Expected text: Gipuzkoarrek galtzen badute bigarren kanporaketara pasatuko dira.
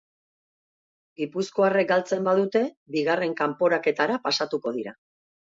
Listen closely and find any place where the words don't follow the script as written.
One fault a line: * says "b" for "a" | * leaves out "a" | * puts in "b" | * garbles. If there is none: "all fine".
all fine